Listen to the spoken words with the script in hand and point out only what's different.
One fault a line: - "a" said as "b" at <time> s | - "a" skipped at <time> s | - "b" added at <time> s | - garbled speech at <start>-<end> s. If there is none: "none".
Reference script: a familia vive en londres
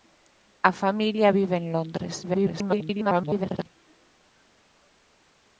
- garbled speech at 2.2-3.7 s